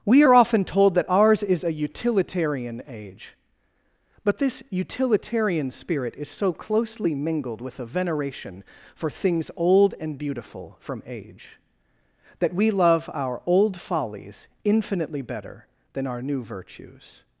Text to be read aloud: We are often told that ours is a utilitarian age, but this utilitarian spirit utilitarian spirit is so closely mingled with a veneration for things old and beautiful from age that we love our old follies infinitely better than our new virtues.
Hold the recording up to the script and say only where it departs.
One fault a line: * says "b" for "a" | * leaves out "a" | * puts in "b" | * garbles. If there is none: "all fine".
* leaves out "utilitarian spirit"